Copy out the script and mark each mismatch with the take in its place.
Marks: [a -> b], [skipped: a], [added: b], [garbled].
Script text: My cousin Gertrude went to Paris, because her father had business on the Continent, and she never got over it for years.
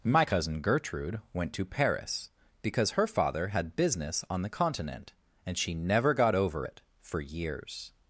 My cousin Gertrude went to Paris, because her father had business on the Continent, and she never got over it for years.